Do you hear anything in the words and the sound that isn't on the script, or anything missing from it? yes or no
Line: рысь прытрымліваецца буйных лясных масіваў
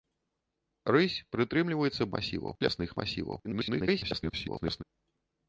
yes